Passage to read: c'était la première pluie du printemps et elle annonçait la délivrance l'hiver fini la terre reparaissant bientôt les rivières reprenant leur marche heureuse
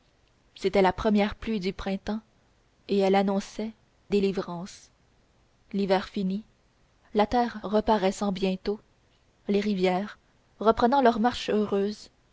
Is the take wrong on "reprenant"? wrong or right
right